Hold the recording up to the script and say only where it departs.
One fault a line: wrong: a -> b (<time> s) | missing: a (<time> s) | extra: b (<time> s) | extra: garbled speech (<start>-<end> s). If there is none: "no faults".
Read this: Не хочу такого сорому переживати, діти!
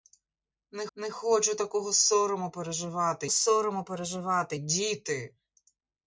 extra: не (1.0 s)
extra: сорому переживати (3.3 s)